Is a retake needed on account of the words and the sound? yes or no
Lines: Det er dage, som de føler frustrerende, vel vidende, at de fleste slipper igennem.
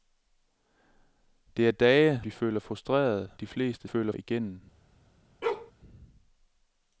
yes